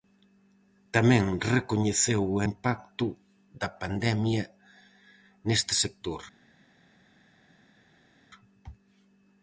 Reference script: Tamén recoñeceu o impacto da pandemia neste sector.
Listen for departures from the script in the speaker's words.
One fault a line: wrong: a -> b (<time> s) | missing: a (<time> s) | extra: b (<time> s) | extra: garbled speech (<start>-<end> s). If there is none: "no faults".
no faults